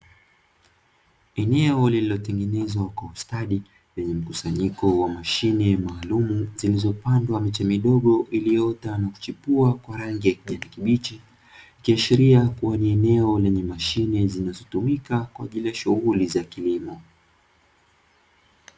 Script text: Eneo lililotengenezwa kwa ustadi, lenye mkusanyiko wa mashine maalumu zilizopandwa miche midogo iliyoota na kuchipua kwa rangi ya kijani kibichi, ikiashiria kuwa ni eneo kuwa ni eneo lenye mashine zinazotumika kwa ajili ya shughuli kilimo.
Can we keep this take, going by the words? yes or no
no